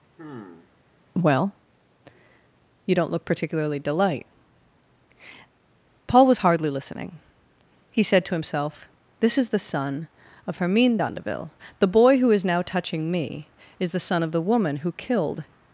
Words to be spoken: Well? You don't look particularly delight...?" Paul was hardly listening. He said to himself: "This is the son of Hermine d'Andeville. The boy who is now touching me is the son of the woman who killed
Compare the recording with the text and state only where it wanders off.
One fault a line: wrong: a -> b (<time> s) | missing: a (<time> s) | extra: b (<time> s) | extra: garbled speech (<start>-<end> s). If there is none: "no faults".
no faults